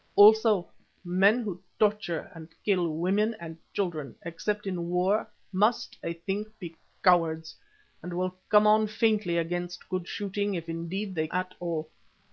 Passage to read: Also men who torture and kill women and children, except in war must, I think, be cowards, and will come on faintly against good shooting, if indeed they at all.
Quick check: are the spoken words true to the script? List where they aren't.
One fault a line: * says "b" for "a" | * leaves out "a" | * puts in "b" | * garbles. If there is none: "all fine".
all fine